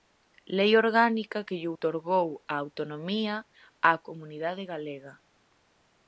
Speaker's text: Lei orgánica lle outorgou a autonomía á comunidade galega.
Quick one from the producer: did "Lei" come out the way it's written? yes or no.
yes